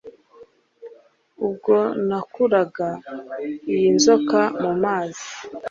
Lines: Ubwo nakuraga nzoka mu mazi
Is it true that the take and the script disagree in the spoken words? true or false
true